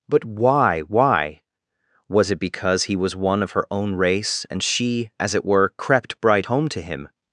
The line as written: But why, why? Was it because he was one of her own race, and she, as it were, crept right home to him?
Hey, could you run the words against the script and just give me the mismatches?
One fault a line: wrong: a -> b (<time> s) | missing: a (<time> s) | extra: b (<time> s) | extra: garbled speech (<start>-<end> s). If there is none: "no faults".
wrong: right -> bright (6.2 s)